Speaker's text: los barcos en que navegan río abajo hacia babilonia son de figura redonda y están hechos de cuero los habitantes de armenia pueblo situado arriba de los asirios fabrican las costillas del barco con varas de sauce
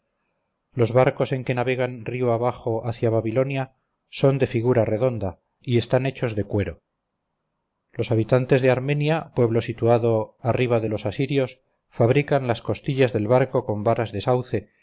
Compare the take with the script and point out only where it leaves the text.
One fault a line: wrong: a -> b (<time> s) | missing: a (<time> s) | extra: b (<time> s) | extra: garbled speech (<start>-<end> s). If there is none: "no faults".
no faults